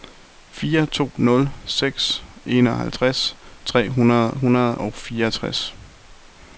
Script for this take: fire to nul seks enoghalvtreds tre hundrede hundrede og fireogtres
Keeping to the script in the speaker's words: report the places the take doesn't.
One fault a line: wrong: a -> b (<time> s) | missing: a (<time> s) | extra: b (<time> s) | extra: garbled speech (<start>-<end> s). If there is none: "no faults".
no faults